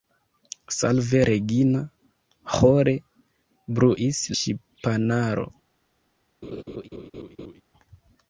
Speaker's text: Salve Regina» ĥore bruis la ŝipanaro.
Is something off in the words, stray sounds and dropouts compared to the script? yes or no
yes